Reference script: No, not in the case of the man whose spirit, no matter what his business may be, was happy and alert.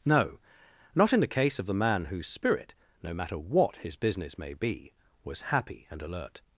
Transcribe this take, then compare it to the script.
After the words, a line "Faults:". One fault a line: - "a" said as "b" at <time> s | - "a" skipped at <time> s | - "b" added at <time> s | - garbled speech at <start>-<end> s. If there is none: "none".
No, not in the case of the man whose spirit, no matter what his business may be, was happy and alert.
Faults:
none